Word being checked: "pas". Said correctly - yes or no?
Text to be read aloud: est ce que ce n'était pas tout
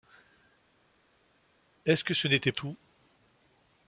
no